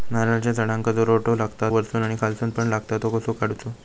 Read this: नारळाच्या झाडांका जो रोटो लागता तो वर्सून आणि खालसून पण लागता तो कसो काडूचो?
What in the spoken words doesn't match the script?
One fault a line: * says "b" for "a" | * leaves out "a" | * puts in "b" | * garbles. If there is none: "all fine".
* leaves out "तो"